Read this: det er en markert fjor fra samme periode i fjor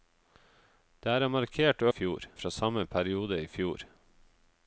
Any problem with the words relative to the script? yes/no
no